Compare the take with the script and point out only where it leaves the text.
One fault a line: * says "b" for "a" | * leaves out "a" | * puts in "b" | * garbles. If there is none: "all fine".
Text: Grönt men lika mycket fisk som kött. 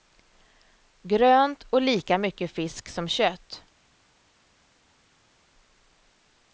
* says "och" for "men"